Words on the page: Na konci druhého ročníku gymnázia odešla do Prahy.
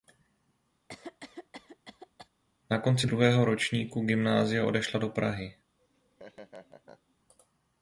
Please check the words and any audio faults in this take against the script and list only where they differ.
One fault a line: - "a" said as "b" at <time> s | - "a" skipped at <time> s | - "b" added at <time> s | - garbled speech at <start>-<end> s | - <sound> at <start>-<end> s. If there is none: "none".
- cough at 0.9-2.3 s
- laugh at 5.8-7.2 s